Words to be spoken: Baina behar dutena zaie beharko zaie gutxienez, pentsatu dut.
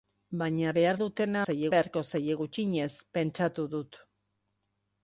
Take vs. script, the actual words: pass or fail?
pass